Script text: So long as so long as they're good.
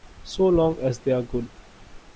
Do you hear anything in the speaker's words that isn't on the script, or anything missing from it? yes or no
yes